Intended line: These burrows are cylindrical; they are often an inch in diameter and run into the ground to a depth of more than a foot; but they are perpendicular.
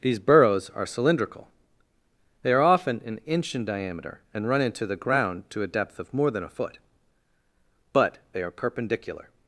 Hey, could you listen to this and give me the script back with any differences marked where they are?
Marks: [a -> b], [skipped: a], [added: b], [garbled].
These burrows are cylindrical; they are often an inch in diameter and run into the ground to a depth of more than a foot; but they are perpendicular.